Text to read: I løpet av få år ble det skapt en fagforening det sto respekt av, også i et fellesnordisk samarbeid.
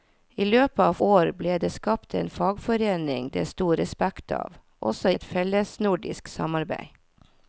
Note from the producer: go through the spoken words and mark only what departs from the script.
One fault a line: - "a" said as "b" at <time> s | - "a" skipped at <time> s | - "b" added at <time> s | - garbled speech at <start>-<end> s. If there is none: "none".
- "få" skipped at 0.9 s
- "i" skipped at 5.1 s